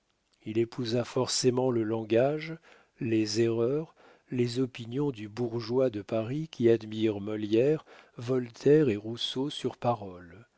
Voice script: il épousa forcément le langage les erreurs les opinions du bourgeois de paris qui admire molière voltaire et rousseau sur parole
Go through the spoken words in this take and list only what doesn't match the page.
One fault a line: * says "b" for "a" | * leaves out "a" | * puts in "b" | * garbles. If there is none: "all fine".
all fine